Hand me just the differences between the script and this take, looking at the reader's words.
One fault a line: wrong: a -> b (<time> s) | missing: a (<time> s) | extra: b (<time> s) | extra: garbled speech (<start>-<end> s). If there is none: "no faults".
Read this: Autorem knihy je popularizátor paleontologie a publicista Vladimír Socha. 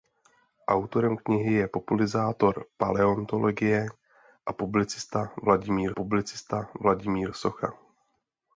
extra: publicista Vladimír (5.9 s)